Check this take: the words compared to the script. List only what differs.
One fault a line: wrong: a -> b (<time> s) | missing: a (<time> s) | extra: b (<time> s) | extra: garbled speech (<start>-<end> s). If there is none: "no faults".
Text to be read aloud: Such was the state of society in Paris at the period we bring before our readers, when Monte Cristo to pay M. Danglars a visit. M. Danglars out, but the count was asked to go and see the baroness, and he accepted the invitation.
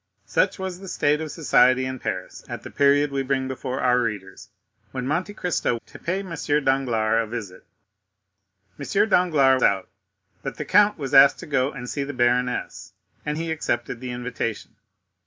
no faults